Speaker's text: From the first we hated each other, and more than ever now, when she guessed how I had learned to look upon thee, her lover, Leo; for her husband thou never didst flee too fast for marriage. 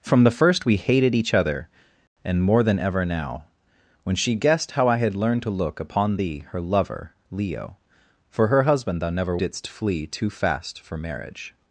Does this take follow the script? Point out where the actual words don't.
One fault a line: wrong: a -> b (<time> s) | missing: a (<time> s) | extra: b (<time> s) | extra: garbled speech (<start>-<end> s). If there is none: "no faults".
no faults